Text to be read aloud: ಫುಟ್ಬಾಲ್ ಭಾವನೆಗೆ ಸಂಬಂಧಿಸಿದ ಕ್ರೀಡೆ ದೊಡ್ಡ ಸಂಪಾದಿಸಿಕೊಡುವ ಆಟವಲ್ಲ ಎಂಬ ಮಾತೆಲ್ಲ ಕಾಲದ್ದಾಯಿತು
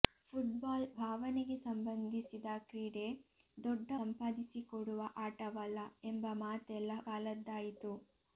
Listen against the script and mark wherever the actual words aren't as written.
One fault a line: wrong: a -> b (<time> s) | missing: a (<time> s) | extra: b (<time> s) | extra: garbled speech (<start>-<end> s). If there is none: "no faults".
no faults